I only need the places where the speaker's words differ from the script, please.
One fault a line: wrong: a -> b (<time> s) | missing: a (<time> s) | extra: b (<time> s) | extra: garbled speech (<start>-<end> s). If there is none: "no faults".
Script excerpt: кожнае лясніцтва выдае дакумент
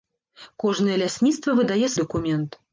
no faults